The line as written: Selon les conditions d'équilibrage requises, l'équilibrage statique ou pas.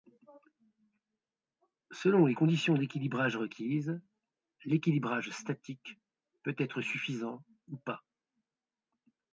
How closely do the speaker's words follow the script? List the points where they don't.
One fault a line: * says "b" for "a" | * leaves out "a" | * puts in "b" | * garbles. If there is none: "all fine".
* puts in "peut être suffisant"